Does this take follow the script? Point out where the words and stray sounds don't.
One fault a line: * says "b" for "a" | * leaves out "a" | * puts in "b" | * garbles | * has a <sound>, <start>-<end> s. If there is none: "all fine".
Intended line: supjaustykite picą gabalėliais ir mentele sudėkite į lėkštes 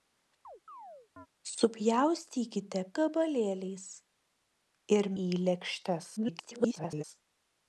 * has a chirp, 0.4-1.3 s
* leaves out "picą"
* leaves out "mentele sudėkite"
* garbles